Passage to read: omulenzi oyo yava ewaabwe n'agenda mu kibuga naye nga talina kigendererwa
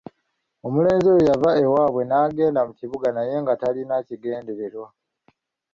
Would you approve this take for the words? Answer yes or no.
yes